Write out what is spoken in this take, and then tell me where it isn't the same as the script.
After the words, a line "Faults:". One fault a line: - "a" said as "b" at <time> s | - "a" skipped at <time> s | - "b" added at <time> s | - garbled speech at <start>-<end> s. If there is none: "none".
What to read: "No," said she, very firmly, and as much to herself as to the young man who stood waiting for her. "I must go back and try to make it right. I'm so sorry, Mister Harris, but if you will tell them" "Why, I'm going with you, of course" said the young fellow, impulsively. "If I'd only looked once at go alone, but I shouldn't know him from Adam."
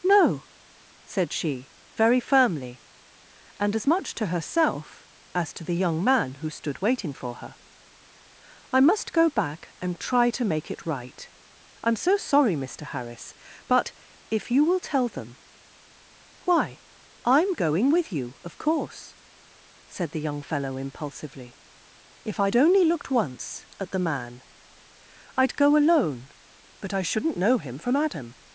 "No," said she, very firmly, and as much to herself as to the young man who stood waiting for her. "I must go back and try to make it right. I'm so sorry, Mister Harris, but if you will tell them" "Why, I'm going with you, of course" said the young fellow, impulsively. "If I'd only looked once at the man I'd go alone, but I shouldn't know him from Adam."
Faults:
- "the man I'd" added at 23.9 s